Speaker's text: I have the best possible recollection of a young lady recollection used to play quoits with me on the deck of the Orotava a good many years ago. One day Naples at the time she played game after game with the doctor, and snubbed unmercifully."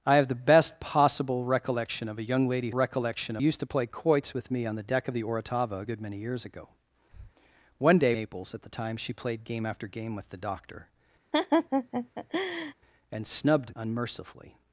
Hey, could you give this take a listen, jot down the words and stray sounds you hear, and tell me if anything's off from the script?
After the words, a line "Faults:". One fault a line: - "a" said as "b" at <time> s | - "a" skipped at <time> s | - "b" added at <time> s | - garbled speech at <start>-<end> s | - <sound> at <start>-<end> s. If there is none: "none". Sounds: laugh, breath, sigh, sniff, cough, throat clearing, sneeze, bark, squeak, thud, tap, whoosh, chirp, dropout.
I have the best possible recollection of a young lady recollection used to play quoits with me on the deck of the Orotava a good many years ago. One day Naples at the time she played game after game with the doctor, and snubbed unmercifully."
Faults:
- breath at 7.1-7.3 s
- laugh at 11.3-12.7 s